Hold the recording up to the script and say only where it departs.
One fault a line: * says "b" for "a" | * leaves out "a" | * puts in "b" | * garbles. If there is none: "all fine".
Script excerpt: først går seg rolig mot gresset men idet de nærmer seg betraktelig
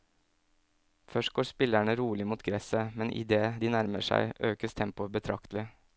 * says "spillerne" for "seg"
* puts in "økes tempoet"